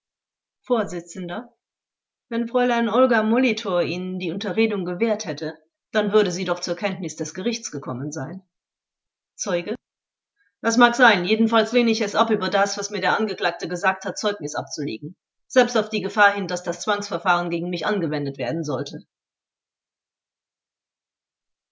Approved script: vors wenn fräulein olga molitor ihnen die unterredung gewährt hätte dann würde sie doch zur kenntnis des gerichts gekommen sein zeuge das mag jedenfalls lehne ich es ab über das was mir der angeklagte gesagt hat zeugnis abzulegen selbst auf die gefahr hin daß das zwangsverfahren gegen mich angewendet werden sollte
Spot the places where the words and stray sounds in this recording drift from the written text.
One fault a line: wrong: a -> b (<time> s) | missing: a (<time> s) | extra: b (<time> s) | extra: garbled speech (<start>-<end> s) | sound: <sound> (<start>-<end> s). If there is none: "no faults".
extra: sein (10.9 s)